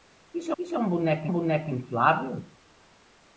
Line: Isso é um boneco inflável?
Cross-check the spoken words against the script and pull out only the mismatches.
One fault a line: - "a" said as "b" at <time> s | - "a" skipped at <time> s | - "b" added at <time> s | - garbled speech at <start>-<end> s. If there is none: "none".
- "isso" added at 0.6 s
- "boneco" added at 1.3 s